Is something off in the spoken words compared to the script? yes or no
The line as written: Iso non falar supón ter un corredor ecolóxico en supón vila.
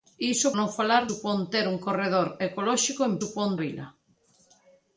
no